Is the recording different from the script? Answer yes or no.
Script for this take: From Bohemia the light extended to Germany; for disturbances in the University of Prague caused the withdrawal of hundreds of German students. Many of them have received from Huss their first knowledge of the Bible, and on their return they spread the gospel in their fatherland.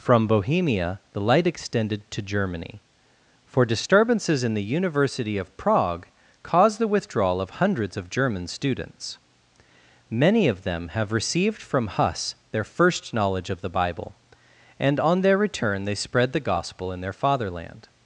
no